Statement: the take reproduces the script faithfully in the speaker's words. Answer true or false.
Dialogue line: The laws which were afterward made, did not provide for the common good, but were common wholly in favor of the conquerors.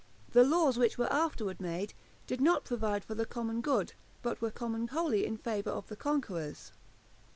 true